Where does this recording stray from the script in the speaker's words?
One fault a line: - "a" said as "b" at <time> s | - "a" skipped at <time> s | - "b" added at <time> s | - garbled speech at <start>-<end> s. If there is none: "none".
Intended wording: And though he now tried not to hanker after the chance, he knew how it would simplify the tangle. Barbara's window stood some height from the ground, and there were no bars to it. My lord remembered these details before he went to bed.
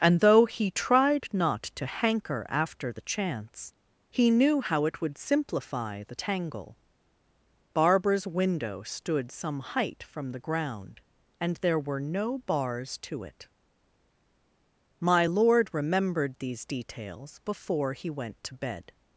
- "now" skipped at 0.7 s